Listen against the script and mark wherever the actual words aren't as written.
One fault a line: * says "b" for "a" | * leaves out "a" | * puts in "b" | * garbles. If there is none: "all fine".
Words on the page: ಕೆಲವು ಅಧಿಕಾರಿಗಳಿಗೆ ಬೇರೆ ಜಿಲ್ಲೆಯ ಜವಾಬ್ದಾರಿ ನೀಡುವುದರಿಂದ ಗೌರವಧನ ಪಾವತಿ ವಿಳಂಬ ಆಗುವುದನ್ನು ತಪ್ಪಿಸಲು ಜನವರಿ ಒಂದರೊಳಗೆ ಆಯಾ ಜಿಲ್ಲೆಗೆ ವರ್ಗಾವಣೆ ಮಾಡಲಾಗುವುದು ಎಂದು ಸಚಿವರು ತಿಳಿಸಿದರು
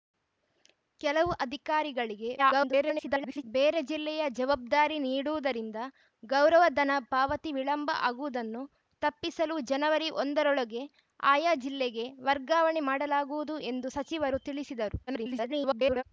* garbles
* garbles